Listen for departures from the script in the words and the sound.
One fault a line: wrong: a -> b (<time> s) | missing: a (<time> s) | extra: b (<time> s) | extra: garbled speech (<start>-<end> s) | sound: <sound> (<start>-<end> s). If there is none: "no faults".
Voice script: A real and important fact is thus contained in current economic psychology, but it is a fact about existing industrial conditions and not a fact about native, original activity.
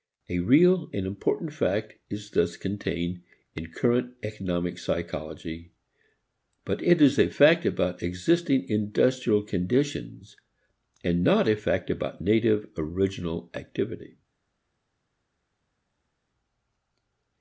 no faults